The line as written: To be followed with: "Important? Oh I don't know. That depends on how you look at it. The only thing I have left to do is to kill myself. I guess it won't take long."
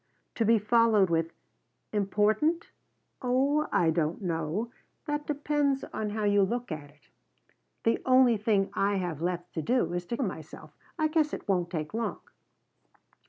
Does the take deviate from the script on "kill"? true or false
true